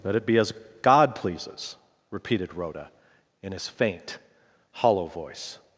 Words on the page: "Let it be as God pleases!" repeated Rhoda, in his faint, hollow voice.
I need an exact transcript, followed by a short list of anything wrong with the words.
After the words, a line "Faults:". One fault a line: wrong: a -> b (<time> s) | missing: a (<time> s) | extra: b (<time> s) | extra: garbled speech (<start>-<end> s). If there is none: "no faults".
"Let it be as God pleases!" repeated Rhoda, in his faint, hollow voice.
Faults:
no faults